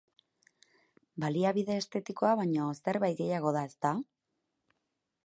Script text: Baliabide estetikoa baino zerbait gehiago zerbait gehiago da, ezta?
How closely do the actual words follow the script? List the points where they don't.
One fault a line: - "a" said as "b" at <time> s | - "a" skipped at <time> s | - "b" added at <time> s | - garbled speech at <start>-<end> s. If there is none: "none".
- "zerbait gehiago" skipped at 3.5 s